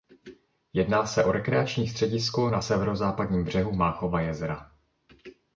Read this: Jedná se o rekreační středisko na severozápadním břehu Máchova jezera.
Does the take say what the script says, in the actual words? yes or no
yes